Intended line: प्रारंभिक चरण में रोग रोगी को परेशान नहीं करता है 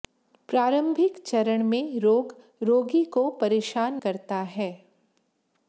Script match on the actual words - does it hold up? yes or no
no